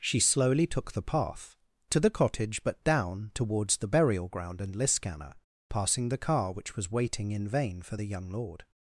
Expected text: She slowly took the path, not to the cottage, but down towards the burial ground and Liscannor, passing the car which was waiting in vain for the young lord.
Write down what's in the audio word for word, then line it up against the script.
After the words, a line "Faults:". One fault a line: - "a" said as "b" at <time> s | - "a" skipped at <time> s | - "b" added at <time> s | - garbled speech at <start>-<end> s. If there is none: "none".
She slowly took the path, to the cottage, but down towards the burial ground and Liscannor, passing the car which was waiting in vain for the young lord.
Faults:
- "not" skipped at 1.6 s